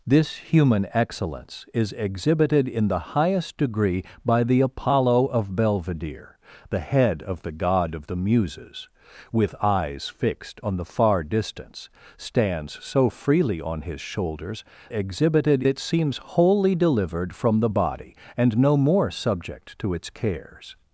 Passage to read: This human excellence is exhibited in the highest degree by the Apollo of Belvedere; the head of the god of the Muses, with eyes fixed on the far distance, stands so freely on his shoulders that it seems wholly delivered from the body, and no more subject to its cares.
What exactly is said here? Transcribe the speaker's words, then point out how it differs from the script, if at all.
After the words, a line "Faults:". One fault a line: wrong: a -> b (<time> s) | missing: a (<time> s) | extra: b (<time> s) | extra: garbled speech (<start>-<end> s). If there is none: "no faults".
This human excellence is exhibited in the highest degree by the Apollo of Belvedere; the head of the god of the Muses, with eyes fixed on the far distance, stands so freely on his shoulders exhibited it seems wholly delivered from the body, and no more subject to its cares.
Faults:
wrong: that -> exhibited (14.9 s)